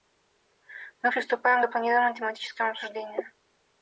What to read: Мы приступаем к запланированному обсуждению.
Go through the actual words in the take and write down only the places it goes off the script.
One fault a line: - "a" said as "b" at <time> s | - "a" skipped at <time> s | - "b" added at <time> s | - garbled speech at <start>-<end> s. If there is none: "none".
- "тематическому" added at 2.2 s